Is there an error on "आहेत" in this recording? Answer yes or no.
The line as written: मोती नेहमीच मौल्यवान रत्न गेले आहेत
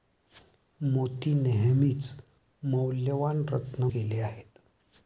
no